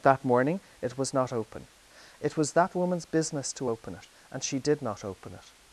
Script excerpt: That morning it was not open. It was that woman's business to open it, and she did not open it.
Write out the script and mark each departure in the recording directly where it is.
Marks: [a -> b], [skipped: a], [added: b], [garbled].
That morning it was not open. It was that woman's business to open it, and she did not open it.